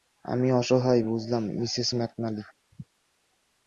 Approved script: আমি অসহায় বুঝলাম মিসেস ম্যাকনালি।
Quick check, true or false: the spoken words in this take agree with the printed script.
true